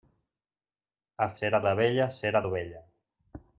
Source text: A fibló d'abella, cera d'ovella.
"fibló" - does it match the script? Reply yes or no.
no